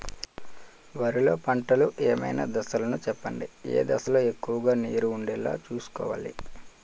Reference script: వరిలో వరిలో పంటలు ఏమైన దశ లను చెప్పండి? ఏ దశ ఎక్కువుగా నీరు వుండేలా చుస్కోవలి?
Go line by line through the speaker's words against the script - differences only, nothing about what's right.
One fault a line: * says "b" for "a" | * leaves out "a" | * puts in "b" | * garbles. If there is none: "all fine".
* leaves out "వరిలో"
* puts in "లొ"